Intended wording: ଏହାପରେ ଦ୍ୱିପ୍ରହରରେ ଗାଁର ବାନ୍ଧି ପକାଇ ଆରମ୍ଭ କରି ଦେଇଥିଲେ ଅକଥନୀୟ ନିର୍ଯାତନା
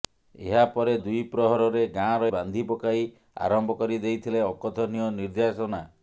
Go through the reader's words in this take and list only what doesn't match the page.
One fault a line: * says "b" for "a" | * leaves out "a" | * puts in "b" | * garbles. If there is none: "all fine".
all fine